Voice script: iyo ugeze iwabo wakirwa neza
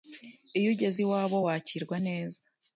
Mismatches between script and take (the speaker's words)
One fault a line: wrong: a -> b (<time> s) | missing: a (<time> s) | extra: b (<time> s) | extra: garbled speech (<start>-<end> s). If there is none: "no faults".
no faults